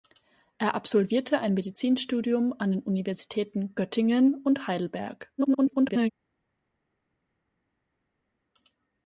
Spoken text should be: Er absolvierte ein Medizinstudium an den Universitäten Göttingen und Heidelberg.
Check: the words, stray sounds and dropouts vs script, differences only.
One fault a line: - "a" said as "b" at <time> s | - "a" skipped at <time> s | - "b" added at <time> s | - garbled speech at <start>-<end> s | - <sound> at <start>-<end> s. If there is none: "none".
- garbled speech at 5.4-6.1 s